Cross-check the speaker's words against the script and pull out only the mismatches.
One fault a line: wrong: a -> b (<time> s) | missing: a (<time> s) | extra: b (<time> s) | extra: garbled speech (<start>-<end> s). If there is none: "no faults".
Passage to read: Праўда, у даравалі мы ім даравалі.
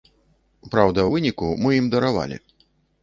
wrong: даравалі -> выніку (1.1 s)